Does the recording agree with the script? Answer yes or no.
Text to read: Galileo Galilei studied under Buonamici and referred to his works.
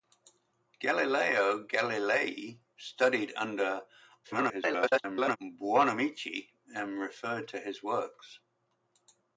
no